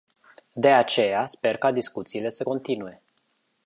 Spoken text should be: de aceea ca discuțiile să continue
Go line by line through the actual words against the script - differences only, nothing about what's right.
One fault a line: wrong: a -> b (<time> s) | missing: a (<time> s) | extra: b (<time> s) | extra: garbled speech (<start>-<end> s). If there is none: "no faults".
extra: sper (1.3 s)